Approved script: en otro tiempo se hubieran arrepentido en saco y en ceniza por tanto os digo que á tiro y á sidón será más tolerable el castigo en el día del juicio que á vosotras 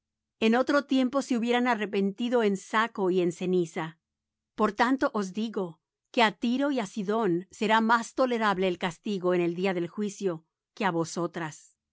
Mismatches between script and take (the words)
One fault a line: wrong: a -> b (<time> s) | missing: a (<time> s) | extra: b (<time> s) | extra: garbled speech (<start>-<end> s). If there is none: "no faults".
no faults